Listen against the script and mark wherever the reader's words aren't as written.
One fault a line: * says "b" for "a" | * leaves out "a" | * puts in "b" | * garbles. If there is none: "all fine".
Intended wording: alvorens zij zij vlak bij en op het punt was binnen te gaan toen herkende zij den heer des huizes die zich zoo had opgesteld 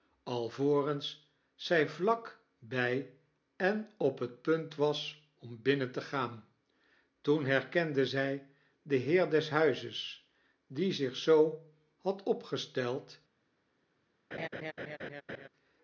* leaves out "zij"
* puts in "om"